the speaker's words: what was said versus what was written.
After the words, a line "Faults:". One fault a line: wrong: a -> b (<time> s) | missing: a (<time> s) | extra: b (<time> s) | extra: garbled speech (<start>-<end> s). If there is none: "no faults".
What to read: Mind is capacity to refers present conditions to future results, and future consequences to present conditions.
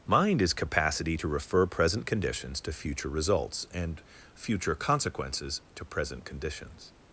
Mind is capacity to refer present conditions to future results, and future consequences to present conditions.
Faults:
wrong: refers -> refer (1.3 s)